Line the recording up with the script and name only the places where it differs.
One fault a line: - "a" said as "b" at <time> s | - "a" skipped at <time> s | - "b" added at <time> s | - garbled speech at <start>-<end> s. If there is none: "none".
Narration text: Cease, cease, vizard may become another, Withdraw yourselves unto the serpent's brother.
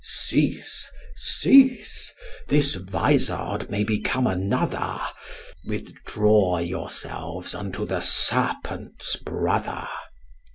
- "this" added at 2.5 s